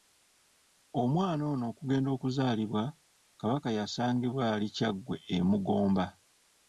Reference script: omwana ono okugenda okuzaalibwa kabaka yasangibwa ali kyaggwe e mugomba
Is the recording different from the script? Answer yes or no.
no